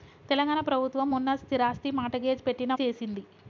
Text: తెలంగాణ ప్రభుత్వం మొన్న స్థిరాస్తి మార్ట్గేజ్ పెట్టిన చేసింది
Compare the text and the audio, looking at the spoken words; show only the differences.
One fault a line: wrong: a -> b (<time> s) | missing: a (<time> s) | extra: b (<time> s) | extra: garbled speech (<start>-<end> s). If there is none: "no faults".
no faults